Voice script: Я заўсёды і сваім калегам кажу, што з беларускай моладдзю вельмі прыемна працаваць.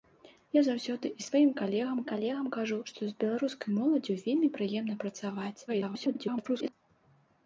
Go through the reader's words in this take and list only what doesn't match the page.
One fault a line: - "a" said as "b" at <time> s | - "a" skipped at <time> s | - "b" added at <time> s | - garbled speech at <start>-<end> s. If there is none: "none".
- "калегам" added at 2.1 s
- garbled speech at 5.7-6.7 s